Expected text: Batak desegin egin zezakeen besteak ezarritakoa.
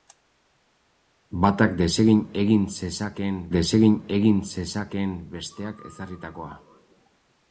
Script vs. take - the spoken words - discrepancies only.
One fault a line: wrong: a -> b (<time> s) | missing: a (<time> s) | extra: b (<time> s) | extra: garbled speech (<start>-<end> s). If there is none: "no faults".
extra: desegin egin zezakeen (3.6 s)